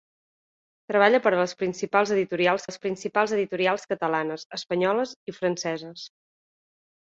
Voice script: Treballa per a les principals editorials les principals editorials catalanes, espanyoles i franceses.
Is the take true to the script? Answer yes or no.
yes